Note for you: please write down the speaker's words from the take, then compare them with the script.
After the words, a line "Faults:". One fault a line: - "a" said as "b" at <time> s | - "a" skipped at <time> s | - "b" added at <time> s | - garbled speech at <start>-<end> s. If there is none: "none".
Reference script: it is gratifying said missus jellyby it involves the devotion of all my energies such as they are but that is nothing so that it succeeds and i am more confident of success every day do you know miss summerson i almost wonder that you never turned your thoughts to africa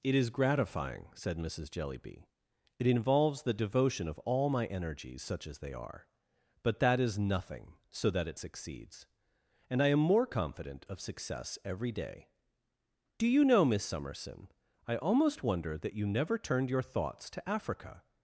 it is gratifying said missus jellyby it involves the devotion of all my energies such as they are but that is nothing so that it succeeds and i am more confident of success every day do you know miss summerson i almost wonder that you never turned your thoughts to africa
Faults:
none